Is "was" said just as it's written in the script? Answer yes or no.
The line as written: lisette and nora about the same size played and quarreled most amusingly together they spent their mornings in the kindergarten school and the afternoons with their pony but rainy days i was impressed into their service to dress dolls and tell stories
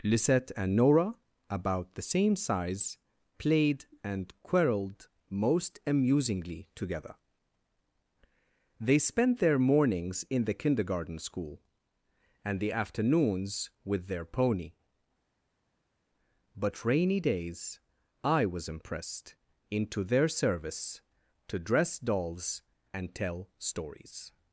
yes